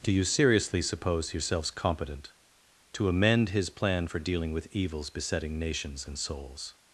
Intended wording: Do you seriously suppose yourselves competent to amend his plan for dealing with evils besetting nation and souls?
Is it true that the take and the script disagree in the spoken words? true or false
true